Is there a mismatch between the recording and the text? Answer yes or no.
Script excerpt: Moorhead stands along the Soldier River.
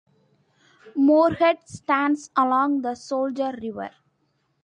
no